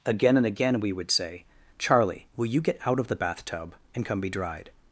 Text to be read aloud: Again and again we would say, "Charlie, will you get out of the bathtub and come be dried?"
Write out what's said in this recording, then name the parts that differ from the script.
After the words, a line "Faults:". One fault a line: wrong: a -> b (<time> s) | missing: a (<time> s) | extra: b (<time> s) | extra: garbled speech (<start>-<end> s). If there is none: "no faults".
Again and again we would say, "Charlie, will you get out of the bathtub and come be dried?"
Faults:
no faults